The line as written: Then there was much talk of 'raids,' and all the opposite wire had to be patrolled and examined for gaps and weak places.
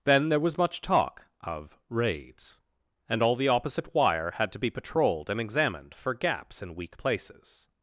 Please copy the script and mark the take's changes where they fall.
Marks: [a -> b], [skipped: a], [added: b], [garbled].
Then there was much talk of 'raids,' and all the opposite wire had to be patrolled and examined for gaps and weak places.